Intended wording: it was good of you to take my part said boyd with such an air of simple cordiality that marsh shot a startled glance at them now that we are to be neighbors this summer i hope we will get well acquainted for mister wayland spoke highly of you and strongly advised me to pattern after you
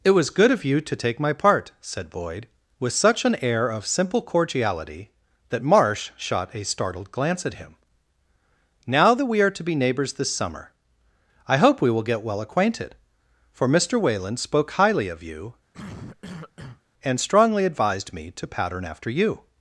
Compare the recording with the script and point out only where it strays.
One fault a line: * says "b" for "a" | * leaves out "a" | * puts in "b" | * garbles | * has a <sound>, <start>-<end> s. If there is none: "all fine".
* says "him" for "them"
* has a cough, 15.7-16.8 s